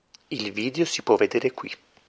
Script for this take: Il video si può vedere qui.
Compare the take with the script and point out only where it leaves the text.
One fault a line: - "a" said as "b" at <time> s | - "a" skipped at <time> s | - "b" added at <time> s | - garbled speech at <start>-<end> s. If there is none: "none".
none